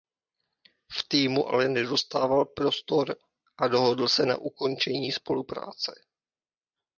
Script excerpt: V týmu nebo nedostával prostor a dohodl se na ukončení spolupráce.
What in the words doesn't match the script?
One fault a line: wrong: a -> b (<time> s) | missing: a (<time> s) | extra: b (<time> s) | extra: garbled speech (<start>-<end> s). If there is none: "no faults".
wrong: nebo -> ale (1.5 s)